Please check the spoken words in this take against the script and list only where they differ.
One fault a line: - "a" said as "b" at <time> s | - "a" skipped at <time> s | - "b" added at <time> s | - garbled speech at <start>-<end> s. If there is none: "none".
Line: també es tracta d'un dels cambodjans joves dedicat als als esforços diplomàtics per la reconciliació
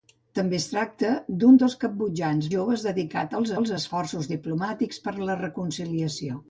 none